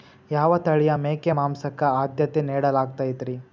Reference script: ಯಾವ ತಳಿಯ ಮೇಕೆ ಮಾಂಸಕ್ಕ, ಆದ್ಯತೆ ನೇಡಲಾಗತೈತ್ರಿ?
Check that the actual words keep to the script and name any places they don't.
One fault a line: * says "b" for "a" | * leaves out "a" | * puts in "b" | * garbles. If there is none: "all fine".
all fine